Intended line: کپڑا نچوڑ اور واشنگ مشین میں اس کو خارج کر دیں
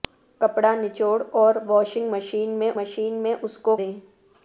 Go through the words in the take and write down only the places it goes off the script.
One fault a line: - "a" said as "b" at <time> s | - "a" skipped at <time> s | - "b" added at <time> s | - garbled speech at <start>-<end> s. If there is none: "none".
- "مشین میں" added at 2.8 s
- "خارج کر" skipped at 3.8 s